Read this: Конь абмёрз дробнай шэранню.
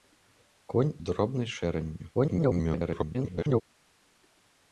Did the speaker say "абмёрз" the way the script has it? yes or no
no